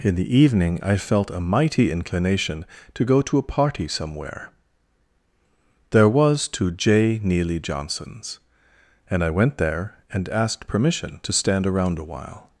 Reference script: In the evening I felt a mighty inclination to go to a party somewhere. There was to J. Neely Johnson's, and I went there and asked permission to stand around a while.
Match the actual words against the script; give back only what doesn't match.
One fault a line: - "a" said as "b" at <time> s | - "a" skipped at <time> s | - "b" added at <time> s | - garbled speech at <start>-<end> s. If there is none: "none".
none